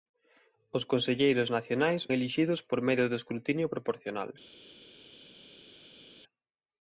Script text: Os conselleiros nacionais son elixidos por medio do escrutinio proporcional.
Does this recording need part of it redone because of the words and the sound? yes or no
yes